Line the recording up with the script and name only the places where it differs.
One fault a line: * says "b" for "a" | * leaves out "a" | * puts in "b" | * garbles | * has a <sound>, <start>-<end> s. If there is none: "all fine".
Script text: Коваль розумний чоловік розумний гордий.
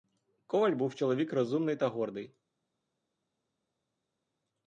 * says "був" for "розумний"
* puts in "та"